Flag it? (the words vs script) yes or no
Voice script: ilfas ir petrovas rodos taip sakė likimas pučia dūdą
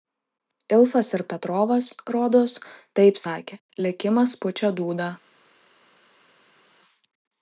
no